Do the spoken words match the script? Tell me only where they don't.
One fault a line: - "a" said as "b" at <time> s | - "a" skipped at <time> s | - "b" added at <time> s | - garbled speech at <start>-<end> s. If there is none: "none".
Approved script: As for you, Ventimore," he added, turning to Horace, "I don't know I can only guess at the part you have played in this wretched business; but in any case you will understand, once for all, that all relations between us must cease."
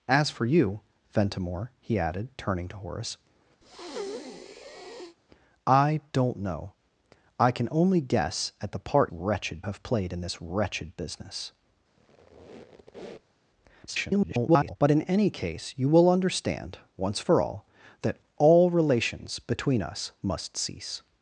- "you" said as "wretched" at 9.1 s
- garbled speech at 13.9-14.8 s